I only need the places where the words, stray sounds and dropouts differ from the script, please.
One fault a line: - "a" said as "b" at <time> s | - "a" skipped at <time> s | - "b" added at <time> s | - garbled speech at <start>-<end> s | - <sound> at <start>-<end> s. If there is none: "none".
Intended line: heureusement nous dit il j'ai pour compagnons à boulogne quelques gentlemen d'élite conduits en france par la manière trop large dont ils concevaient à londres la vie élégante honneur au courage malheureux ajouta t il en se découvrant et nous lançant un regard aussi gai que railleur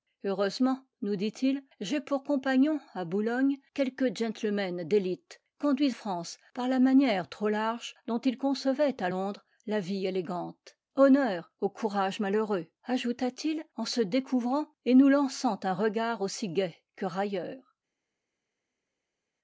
- "en" skipped at 6.0 s